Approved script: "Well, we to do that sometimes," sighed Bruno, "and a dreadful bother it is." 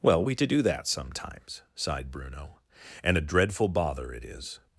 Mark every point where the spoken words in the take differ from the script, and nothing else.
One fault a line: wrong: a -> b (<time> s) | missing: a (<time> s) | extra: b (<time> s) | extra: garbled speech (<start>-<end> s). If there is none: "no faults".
no faults